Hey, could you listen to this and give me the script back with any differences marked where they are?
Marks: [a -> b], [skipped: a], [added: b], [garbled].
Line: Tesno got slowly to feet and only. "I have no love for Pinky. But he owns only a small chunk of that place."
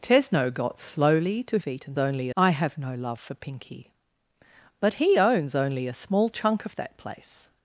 Tesno got slowly to feet and only. "I have no love for Pinky. But he owns only a small chunk of that place."